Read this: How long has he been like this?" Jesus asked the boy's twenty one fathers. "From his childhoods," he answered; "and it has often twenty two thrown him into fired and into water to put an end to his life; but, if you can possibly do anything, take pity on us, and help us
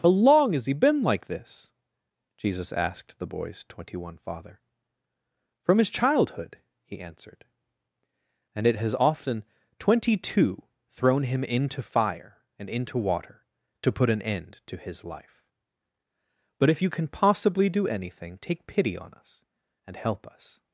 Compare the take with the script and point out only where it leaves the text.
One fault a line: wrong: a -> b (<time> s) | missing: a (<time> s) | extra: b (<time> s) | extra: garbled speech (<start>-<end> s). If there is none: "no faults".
wrong: fathers -> father (4.2 s)
wrong: childhoods -> childhood (5.9 s)
wrong: fired -> fire (11.8 s)